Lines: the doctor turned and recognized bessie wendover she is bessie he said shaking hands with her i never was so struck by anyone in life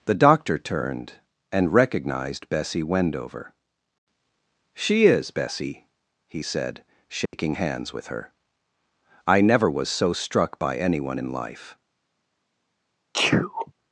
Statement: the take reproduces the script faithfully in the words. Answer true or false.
true